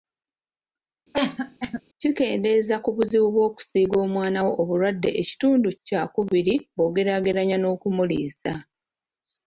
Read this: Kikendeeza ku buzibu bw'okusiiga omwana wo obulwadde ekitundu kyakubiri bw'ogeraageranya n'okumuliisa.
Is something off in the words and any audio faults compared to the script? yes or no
yes